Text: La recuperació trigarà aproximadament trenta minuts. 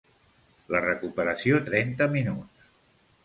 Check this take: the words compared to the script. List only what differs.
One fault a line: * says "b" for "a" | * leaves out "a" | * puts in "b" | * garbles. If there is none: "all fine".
* leaves out "trigarà aproximadament"